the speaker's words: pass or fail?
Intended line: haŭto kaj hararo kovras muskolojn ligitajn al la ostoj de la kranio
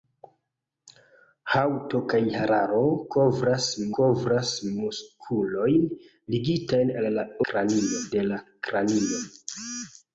fail